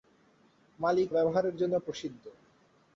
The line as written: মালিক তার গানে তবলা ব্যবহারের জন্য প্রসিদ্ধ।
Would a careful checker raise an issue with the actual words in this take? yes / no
yes